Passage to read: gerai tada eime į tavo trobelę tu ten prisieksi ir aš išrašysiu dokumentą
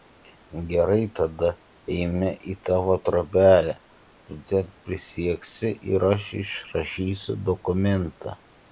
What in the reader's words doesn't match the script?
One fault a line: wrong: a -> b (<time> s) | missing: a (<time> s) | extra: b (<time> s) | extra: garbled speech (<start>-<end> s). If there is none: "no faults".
no faults